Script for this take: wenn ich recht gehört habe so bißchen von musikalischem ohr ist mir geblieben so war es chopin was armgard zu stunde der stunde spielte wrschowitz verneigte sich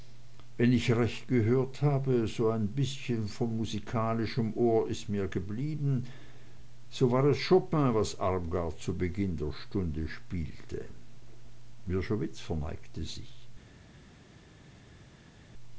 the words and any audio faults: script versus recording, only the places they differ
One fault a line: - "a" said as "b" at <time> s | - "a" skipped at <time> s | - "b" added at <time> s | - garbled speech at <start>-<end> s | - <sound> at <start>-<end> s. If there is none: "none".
- "ein" added at 2.5 s
- "stunde" said as "beginn" at 9.0 s